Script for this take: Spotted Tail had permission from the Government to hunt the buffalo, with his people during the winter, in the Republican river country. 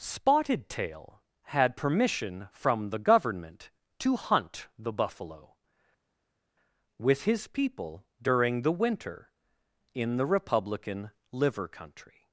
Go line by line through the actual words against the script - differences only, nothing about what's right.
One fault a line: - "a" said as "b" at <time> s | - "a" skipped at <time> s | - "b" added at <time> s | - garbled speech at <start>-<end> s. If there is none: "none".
- "river" said as "liver" at 11.3 s